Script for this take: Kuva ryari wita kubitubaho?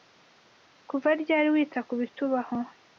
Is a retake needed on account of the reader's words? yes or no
no